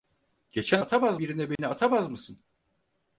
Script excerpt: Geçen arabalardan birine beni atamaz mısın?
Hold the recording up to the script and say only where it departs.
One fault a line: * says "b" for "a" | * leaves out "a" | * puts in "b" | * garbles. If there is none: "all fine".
* says "atamaz" for "arabalardan"